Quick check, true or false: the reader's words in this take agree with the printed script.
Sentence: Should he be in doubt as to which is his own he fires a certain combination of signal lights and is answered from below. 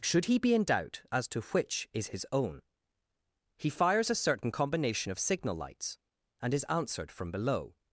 true